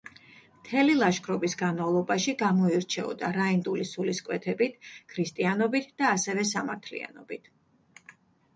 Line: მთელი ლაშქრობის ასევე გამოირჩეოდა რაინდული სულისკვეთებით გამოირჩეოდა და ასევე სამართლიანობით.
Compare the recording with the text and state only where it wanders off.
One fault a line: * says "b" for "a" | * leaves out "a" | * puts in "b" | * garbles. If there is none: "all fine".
* says "განმავლობაში" for "ასევე"
* says "ქრისტიანობით" for "გამოირჩეოდა"